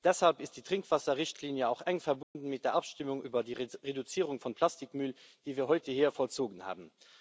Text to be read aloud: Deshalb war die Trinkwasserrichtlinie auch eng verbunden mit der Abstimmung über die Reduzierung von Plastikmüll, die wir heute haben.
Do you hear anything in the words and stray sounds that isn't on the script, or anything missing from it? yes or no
yes